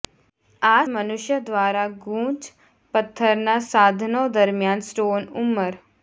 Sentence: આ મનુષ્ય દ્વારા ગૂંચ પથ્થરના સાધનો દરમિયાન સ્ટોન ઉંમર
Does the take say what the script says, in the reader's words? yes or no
yes